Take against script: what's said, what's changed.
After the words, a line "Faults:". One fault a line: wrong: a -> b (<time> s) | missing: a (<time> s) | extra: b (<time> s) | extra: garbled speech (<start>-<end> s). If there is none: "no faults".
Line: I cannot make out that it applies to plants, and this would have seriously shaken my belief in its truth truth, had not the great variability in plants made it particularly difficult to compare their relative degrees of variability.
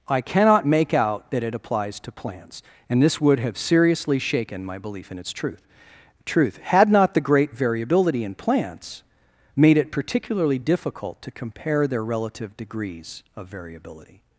I cannot make out that it applies to plants, and this would have seriously shaken my belief in its truth truth, had not the great variability in plants made it particularly difficult to compare their relative degrees of variability.
Faults:
no faults